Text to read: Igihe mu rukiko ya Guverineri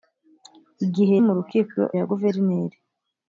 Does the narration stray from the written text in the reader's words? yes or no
no